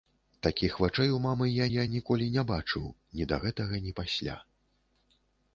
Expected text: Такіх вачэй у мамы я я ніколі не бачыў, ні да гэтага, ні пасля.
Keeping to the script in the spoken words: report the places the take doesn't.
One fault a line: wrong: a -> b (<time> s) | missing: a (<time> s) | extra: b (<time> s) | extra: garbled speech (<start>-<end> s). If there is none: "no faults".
no faults